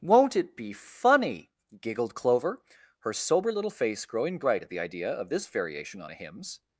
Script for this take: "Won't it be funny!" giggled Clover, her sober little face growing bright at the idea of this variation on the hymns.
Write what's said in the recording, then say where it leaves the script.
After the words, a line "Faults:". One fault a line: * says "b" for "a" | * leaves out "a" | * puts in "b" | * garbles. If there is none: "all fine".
"Won't it be funny!" giggled Clover, her sober little face growing bright at the idea of this variation on a hymns.
Faults:
* says "a" for "the"